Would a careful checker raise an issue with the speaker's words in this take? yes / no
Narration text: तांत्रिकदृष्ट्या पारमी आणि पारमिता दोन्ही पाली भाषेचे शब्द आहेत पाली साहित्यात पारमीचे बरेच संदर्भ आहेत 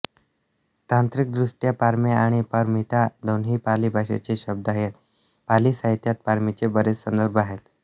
no